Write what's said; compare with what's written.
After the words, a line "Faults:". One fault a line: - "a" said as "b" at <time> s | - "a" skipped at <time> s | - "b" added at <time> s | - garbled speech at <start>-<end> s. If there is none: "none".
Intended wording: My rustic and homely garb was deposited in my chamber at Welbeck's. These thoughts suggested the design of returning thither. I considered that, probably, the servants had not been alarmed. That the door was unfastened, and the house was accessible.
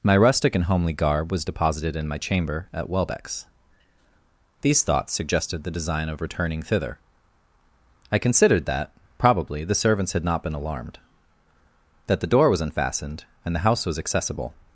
My rustic and homely garb was deposited in my chamber at Welbeck's. These thoughts suggested the design of returning thither. I considered that, probably, the servants had not been alarmed. That the door was unfastened, and the house was accessible.
Faults:
none